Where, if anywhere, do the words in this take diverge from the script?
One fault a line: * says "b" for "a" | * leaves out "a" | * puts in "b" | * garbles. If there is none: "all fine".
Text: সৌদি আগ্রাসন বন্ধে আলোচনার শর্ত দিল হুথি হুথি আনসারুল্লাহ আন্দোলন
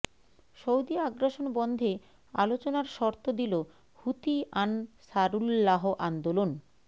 * leaves out "হুথি"